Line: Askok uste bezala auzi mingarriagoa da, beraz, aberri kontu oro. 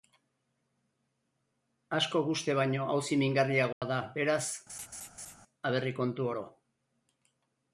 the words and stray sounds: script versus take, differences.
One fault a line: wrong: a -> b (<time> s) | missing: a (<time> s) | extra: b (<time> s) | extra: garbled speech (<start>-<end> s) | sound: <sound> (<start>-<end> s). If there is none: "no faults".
wrong: bezala -> baino (2.6 s)
sound: dropout (3.7-3.8 s)
sound: laugh (4.7-5.4 s)